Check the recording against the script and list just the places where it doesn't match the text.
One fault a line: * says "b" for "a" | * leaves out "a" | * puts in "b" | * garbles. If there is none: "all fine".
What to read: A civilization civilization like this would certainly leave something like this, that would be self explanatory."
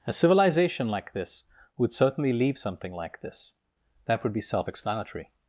* leaves out "civilization"